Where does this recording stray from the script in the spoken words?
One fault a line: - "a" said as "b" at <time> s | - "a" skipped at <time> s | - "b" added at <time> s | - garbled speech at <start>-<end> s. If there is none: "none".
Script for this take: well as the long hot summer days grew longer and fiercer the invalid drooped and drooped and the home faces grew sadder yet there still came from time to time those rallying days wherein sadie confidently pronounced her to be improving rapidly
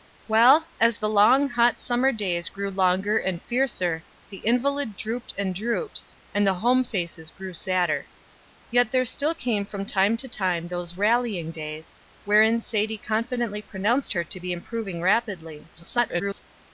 - garbled speech at 15.8-16.4 s